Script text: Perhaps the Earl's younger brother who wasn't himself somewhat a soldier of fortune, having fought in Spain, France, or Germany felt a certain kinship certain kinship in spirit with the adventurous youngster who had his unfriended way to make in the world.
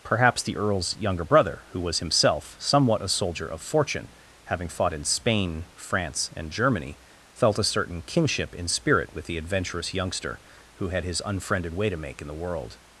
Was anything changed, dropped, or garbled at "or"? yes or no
yes